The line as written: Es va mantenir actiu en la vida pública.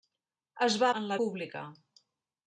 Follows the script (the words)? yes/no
no